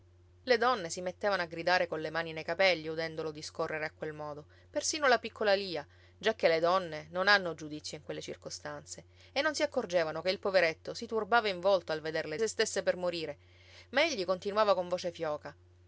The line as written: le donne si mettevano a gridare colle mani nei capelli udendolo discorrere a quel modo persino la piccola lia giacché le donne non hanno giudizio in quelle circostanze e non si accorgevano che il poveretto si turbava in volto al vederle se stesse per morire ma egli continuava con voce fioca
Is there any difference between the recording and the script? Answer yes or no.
no